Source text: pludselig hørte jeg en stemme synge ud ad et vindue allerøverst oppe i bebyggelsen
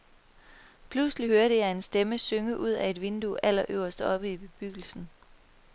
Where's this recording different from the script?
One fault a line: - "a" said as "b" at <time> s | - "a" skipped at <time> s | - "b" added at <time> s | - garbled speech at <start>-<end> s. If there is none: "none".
none